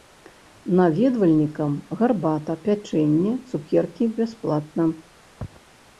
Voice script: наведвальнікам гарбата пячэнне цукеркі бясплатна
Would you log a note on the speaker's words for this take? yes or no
no